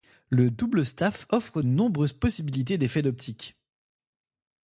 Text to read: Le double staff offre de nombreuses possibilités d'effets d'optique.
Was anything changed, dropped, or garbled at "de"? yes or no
yes